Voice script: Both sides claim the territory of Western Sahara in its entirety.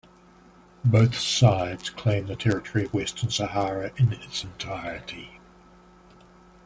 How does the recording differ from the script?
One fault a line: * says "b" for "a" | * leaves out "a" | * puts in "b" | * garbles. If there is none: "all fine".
all fine